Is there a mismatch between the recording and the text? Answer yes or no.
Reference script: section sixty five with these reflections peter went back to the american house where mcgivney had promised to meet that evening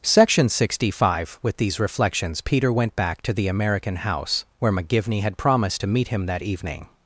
yes